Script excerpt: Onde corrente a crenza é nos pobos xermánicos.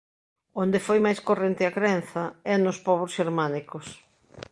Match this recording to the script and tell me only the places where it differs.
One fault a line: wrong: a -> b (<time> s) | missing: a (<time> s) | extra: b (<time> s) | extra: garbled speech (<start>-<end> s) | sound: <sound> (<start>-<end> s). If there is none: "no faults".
extra: foi máis (0.9 s)